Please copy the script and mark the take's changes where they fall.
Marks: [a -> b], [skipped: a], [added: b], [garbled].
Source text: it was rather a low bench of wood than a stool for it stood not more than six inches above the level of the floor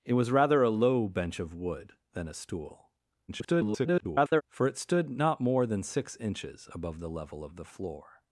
it was rather a low bench of wood than a stool [garbled] for it stood not more than six inches above the level of the floor